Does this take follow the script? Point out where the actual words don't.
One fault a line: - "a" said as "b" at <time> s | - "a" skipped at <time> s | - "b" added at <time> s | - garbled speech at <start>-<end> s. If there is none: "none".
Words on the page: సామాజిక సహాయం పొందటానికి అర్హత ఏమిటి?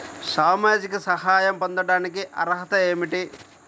none